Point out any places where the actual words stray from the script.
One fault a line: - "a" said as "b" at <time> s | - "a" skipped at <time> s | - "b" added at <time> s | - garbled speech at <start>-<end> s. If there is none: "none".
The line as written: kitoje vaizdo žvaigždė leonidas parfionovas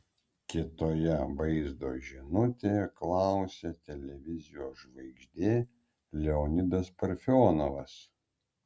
- "žinutėje klausė televizijos" added at 2.1 s